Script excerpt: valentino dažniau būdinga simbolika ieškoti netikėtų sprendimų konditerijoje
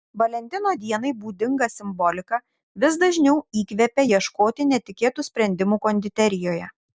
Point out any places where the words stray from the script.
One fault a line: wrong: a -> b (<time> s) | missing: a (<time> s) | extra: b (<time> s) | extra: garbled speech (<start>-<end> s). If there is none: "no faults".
wrong: dažniau -> dienai (0.8 s)
extra: vis dažniau įkvepia (2.8 s)